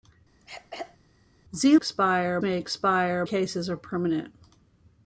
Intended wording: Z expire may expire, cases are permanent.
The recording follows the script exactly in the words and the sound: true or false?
false